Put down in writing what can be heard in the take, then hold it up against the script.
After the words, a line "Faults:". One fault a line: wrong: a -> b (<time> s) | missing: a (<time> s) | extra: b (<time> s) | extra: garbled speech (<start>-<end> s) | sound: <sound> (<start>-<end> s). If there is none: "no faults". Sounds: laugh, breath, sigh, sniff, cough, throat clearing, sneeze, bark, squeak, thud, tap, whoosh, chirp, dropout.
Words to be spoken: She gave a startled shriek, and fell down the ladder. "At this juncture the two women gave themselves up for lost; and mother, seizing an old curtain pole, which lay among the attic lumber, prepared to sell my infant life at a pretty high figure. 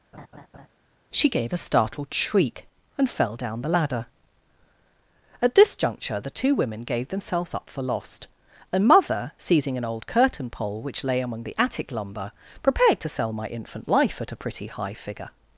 She gave a startled shriek, and fell down the ladder. "At this juncture the two women gave themselves up for lost; and mother, seizing an old curtain pole, which lay among the attic lumber, prepared to sell my infant life at a pretty high figure.
Faults:
sound: laugh (0.1-0.7 s)